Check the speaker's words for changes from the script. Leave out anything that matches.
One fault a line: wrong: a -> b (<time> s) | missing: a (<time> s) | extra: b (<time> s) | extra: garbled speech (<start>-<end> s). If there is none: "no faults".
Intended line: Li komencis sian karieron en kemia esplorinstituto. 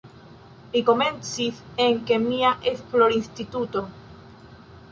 missing: sian karieron (1.6 s)